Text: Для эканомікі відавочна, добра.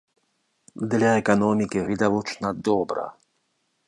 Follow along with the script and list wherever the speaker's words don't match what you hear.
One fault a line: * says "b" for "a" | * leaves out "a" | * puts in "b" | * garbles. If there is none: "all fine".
all fine